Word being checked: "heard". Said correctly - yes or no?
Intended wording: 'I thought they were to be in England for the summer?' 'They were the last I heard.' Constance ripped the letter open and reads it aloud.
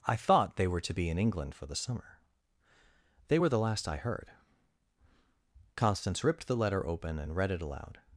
yes